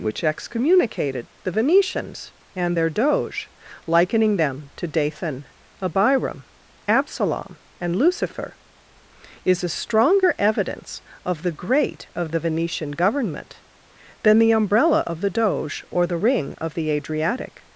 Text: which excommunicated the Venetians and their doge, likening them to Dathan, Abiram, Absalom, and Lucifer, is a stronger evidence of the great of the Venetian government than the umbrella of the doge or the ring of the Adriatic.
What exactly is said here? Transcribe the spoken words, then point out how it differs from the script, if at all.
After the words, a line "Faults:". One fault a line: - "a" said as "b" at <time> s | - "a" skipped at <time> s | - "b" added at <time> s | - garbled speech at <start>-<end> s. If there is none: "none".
which excommunicated the Venetians and their doge, likening them to Dathan, Abiram, Absalom, and Lucifer, is a stronger evidence of the great of the Venetian government than the umbrella of the doge or the ring of the Adriatic.
Faults:
none